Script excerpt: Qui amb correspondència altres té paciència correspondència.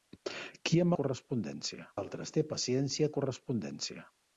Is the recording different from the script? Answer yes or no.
no